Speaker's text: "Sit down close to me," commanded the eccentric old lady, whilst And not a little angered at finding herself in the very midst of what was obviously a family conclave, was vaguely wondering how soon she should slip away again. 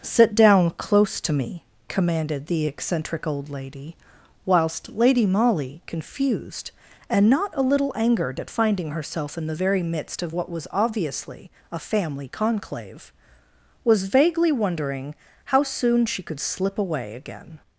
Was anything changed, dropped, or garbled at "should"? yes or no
yes